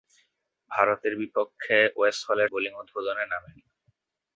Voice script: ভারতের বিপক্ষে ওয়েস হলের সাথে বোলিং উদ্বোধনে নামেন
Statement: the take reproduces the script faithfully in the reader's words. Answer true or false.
false